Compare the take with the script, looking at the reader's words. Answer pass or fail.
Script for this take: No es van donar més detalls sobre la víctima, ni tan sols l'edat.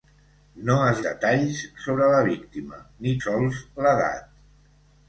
fail